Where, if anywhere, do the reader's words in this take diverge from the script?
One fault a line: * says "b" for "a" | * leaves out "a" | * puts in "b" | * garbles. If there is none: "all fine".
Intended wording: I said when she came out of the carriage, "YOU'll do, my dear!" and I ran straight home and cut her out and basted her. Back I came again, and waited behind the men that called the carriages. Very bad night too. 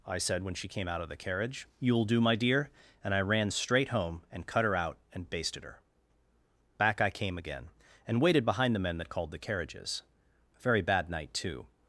* puts in "a"